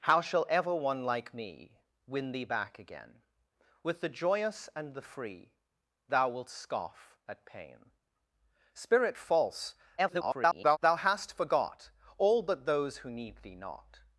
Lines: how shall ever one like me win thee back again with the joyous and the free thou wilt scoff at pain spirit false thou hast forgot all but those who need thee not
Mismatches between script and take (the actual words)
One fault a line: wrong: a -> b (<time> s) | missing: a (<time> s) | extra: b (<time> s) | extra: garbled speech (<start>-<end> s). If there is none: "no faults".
extra: garbled speech (10.0-10.8 s)